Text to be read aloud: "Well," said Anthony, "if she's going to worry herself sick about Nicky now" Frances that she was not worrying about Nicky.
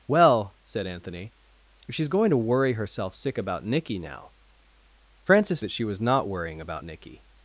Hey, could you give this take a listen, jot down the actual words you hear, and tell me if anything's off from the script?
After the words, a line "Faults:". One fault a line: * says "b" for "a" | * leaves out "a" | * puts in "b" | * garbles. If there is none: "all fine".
"Well," said Anthony, "if she's going to worry herself sick about Nicky now" Frances that she was not worrying about Nicky.
Faults:
all fine